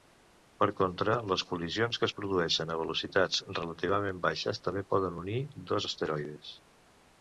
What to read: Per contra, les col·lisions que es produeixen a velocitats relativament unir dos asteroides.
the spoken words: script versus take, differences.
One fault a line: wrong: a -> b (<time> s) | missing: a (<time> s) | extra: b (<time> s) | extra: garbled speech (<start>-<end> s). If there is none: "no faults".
extra: baixes també poden (4.3 s)